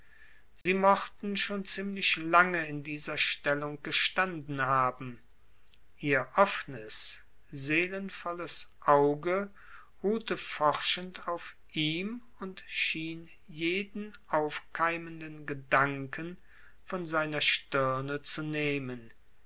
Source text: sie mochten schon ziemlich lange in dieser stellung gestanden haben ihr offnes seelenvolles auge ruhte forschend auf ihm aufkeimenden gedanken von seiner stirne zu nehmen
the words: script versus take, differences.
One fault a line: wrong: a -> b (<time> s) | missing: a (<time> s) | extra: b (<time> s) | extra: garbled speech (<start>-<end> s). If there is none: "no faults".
extra: und schien jeden (12.4 s)